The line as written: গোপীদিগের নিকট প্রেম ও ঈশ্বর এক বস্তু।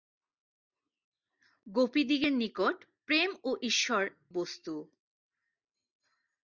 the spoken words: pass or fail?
fail